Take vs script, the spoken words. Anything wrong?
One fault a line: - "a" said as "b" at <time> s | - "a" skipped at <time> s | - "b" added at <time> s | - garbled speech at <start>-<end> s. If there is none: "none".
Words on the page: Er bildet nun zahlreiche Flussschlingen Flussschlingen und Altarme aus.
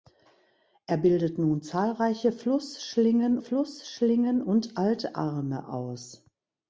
none